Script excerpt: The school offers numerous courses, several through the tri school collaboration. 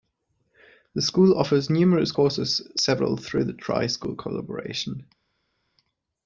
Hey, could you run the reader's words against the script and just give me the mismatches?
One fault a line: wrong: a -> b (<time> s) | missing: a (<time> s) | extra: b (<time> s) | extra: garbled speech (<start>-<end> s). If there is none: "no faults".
no faults